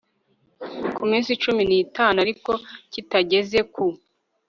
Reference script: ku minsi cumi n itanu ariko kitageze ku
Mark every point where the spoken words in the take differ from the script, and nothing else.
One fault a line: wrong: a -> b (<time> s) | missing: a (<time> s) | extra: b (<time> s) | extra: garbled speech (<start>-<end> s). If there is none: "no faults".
no faults